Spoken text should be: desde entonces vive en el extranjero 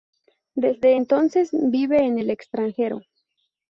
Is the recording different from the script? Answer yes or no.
no